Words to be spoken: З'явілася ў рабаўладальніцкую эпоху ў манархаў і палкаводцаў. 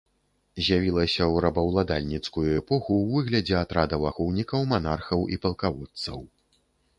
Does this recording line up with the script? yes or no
no